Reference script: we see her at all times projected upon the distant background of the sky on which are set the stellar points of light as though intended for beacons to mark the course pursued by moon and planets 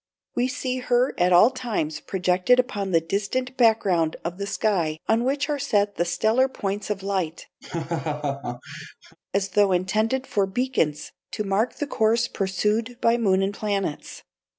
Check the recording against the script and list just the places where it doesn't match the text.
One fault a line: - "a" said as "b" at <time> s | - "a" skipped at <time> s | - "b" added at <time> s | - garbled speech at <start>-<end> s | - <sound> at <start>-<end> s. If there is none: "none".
- laugh at 7.6-9.2 s